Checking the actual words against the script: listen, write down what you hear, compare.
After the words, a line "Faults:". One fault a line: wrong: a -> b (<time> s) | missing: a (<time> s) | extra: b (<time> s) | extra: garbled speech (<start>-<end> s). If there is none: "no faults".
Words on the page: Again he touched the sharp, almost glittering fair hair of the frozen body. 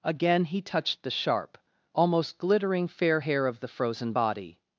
Again he touched the sharp, almost glittering fair hair of the frozen body.
Faults:
no faults